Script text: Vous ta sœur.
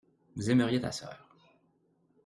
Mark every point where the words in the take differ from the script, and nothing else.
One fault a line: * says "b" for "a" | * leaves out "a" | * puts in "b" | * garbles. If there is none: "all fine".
* puts in "aimeriez"